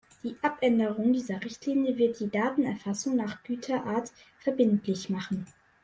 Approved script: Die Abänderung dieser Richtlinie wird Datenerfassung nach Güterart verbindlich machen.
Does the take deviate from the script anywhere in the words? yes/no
yes